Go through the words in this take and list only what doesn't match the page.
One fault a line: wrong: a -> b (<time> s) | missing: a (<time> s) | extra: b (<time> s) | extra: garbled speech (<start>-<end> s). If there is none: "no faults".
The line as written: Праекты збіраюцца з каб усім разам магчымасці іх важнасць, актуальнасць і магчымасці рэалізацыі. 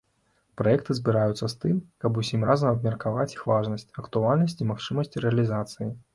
extra: тым (1.6 s)
wrong: магчымасці -> абмеркаваць (2.8 s)